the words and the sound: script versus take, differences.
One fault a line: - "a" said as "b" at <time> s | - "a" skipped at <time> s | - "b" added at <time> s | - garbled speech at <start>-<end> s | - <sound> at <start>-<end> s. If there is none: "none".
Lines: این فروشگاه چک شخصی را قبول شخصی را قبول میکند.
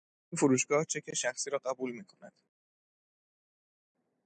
- "شخصی را قبول" skipped at 1.9 s